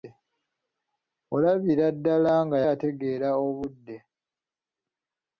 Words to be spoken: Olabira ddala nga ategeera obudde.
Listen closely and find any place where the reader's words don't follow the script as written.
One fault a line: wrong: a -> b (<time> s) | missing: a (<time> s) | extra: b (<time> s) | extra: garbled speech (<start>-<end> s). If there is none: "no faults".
no faults